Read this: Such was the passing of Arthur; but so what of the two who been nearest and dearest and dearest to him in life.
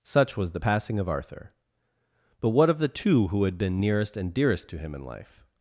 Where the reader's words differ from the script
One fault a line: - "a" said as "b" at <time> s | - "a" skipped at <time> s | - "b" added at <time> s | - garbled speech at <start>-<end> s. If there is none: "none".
- "so" skipped at 2.5 s
- "had" added at 3.4 s
- "and dearest" skipped at 4.7 s